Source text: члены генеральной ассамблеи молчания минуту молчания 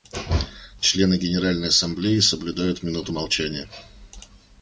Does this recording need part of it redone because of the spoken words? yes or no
yes